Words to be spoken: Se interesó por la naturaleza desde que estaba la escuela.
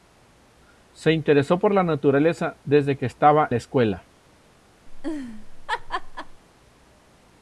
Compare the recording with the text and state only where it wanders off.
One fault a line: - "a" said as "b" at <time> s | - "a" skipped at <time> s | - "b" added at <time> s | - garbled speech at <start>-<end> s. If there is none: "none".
none